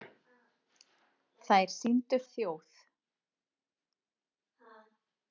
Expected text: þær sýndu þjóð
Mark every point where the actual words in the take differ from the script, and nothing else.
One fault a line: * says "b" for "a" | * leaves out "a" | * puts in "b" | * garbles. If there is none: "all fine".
all fine